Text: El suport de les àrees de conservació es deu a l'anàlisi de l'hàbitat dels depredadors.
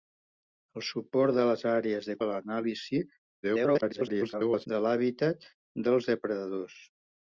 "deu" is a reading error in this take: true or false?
true